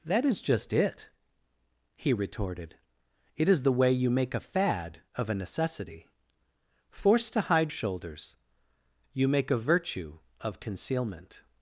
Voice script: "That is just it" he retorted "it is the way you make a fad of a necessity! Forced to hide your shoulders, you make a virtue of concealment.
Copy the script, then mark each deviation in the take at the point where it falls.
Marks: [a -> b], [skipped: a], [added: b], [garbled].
"That is just it" he retorted "it is the way you make a fad of a necessity! Forced to hide [skipped: your] shoulders, you make a virtue of concealment.